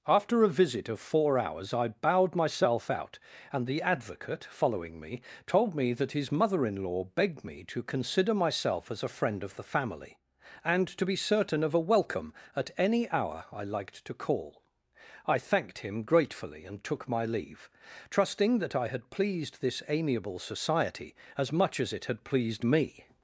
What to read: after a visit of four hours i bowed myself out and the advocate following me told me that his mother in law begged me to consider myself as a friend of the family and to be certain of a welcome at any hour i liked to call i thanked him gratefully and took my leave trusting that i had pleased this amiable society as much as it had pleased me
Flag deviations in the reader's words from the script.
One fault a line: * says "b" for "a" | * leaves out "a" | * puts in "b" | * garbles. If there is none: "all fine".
all fine